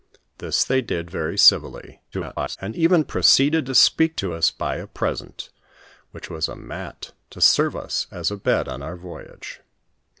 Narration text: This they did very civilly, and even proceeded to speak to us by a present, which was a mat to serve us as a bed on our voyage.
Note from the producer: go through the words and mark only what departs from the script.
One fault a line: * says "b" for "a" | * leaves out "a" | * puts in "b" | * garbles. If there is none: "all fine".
* garbles